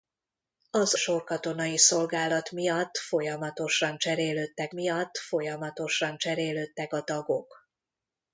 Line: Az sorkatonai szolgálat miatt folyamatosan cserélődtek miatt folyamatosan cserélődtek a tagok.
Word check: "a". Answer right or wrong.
right